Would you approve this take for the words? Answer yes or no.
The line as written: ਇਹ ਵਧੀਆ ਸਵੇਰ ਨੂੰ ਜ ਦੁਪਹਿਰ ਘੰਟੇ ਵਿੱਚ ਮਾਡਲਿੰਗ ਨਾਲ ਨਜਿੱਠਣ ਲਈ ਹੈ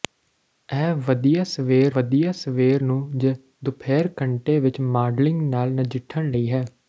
no